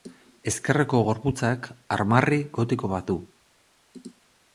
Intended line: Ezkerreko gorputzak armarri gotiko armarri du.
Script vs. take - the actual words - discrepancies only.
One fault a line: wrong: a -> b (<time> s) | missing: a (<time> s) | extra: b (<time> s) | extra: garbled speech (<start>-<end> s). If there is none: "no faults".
wrong: armarri -> bat (2.9 s)